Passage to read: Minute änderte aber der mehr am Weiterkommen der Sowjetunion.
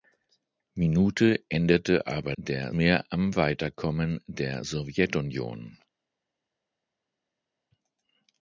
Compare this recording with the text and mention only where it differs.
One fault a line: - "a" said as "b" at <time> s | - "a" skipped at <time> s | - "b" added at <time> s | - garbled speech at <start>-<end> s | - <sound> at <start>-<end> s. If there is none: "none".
none